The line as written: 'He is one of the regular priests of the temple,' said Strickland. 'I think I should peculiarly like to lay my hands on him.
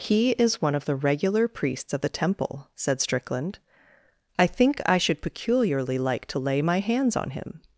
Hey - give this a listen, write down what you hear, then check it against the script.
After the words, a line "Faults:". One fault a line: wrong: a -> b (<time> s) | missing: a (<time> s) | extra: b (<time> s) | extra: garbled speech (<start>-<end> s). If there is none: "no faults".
'He is one of the regular priests of the temple,' said Strickland. 'I think I should peculiarly like to lay my hands on him.
Faults:
no faults